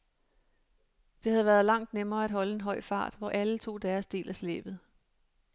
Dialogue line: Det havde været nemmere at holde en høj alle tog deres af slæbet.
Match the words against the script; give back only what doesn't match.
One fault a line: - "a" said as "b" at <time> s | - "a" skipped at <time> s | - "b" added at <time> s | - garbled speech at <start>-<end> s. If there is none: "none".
- "langt" added at 1.6 s
- "fart hvor" added at 2.8 s
- "del" added at 4.1 s